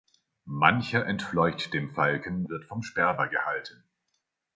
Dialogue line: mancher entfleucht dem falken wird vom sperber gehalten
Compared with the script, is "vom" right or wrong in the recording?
right